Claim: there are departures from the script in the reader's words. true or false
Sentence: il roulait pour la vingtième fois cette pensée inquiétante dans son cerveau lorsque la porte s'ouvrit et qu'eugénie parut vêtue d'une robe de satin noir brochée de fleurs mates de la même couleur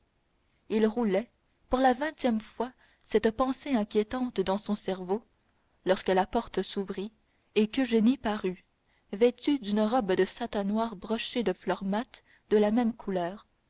false